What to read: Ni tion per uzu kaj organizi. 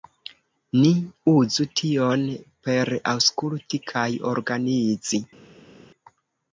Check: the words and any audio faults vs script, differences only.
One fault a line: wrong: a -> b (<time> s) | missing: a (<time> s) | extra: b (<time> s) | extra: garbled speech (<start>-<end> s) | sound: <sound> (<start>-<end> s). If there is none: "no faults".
extra: uzu (1.3 s)
wrong: uzu -> aŭskulti (3.1 s)